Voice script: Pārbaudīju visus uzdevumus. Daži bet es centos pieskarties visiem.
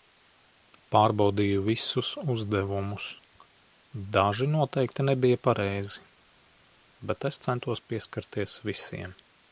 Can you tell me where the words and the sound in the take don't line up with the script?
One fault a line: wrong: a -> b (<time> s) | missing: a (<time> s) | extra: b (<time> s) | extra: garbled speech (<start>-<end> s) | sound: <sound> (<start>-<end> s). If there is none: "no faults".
extra: noteikti nebija pareizi (4.5 s)